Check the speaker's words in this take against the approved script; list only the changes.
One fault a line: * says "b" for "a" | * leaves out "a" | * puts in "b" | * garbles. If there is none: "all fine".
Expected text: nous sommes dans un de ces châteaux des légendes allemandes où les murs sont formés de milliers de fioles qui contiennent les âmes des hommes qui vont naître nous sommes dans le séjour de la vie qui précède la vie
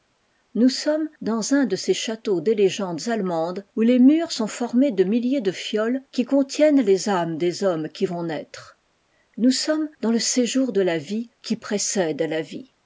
all fine